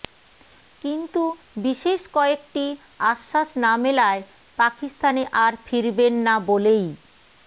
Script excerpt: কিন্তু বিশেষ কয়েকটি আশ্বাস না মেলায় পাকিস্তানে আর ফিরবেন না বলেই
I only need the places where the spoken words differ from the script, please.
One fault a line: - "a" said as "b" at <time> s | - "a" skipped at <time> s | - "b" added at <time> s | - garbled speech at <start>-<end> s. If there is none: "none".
none